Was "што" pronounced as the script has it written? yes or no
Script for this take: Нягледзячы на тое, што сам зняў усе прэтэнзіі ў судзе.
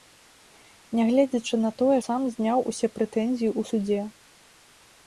no